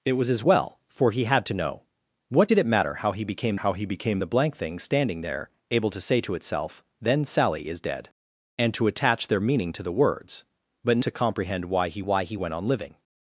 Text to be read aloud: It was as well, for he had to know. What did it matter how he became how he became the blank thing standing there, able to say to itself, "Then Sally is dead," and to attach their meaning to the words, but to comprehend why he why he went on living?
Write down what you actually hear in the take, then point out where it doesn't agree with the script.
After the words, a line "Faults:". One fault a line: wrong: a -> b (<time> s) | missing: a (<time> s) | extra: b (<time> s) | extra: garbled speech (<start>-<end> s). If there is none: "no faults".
It was as well, for he had to know. What did it matter how he became how he became the blank thing standing there, able to say to itself, "Then Sally is dead," and to attach their meaning to the words, but to comprehend why he why he went on living?
Faults:
no faults